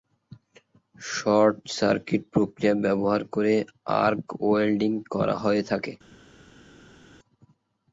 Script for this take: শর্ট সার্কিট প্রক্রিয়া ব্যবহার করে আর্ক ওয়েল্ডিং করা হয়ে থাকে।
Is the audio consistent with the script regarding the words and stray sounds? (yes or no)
yes